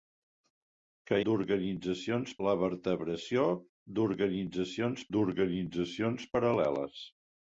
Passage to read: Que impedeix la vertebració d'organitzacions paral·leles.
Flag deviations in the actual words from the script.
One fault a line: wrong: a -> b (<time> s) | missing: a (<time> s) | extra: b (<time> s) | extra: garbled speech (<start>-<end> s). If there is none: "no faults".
wrong: impedeix -> d'organitzacions (1.3 s)
extra: d'organitzacions (5.2 s)